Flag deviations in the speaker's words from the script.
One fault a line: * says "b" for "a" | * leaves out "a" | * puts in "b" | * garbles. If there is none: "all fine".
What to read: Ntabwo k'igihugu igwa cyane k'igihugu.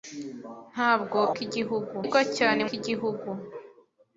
all fine